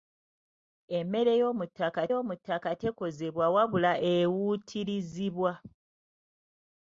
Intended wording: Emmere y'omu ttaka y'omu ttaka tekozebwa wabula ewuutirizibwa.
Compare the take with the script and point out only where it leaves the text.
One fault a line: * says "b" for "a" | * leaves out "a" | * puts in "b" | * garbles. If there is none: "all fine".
all fine